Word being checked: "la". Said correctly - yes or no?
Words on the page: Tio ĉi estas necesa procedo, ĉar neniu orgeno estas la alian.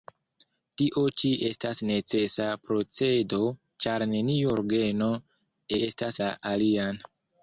yes